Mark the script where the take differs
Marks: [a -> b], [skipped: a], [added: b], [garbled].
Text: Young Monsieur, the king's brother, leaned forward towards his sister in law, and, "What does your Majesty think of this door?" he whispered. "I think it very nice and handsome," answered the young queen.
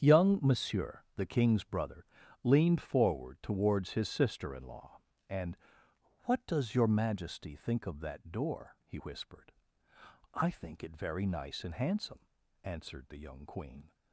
Young Monsieur, the king's brother, leaned forward towards his sister in law, and, "What does your Majesty think of [this -> that] door?" he whispered. "I think it very nice and handsome," answered the young queen.